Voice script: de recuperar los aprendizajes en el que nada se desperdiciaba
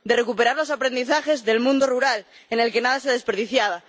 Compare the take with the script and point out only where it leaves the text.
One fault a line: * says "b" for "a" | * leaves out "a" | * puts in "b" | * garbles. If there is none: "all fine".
* puts in "del mundo rural"